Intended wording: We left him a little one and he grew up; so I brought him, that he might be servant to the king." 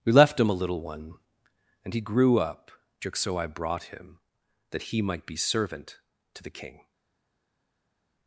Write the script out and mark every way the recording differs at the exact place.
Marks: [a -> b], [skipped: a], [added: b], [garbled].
We left him a little one and he grew up; [added: just] so I brought him, that he might be servant to the king."